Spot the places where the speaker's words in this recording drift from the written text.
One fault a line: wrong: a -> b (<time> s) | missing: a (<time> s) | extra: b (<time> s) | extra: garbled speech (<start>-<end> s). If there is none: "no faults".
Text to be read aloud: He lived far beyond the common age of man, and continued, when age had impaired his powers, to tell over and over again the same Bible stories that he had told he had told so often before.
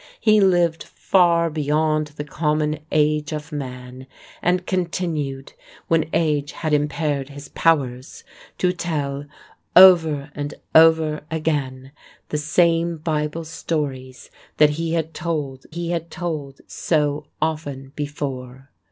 no faults